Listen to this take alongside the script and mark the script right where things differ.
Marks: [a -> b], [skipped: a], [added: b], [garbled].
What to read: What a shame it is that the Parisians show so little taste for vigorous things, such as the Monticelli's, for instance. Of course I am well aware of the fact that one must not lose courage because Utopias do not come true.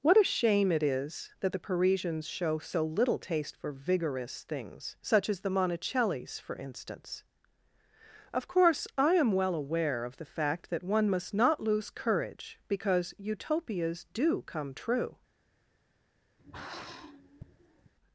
What a shame it is that the Parisians show so little taste for vigorous things, such as the Monticelli's, for instance. Of course I am well aware of the fact that one must not lose courage because Utopias do [skipped: not] come true.